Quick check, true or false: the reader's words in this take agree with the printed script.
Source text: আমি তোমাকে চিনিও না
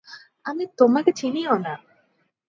true